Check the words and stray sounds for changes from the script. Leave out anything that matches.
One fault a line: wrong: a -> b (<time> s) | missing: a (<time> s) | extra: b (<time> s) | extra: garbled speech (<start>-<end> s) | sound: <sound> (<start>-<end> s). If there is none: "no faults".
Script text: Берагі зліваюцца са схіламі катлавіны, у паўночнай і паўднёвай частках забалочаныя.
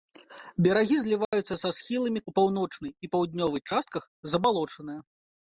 sound: dropout (1.2-1.3 s)
missing: катлавіны (2.2 s)